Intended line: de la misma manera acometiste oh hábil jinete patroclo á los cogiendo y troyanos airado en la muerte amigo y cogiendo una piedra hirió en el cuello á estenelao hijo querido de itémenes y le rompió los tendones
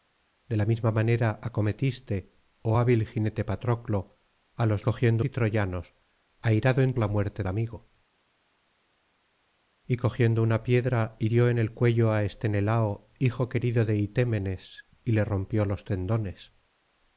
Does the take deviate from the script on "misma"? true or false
false